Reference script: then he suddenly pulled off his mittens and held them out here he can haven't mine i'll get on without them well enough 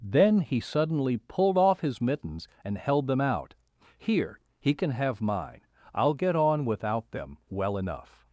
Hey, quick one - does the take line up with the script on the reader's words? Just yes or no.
no